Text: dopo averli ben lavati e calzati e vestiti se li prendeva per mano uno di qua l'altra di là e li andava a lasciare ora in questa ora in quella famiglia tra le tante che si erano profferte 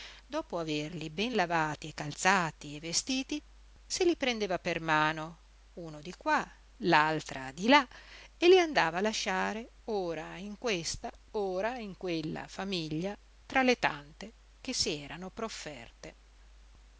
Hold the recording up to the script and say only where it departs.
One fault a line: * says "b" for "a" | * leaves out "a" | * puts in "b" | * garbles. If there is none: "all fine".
all fine